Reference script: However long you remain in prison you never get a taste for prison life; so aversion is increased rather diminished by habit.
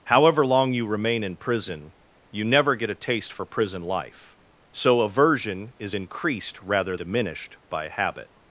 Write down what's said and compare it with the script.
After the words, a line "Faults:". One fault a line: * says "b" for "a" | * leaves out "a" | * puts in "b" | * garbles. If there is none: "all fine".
However long you remain in prison you never get a taste for prison life; so aversion is increased rather diminished by habit.
Faults:
all fine